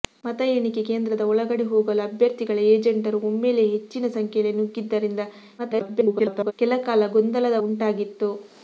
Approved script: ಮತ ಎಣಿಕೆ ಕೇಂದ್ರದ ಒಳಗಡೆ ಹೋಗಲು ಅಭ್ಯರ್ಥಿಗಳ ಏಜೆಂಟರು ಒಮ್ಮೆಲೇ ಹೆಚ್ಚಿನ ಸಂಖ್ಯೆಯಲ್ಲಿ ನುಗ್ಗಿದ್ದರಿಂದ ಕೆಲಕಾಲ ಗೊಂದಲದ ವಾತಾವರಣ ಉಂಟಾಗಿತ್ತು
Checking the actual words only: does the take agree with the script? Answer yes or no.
no